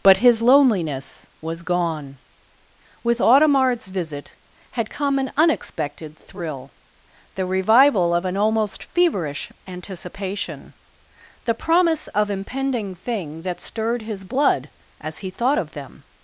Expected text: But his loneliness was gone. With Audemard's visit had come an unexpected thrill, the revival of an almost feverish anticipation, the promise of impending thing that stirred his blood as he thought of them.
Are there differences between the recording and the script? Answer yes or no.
no